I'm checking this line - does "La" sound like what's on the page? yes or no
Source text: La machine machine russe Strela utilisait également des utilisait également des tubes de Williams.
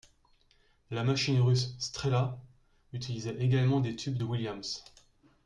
yes